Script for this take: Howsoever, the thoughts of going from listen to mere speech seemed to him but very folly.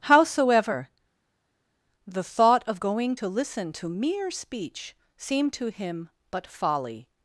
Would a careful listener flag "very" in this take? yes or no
yes